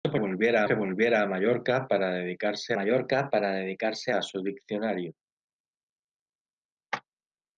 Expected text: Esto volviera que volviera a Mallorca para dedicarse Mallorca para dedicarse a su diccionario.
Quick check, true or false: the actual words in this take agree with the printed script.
true